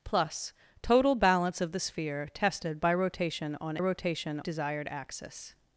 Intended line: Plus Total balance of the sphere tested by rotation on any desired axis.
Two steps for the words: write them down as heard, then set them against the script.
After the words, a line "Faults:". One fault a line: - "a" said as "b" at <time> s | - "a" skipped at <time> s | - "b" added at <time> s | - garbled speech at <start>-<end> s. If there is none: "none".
Plus Total balance of the sphere tested by rotation on rotation desired axis.
Faults:
- "any" said as "rotation" at 3.8 s